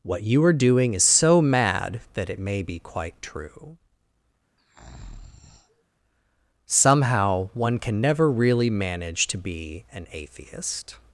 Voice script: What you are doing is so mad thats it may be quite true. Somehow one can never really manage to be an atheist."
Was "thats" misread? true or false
true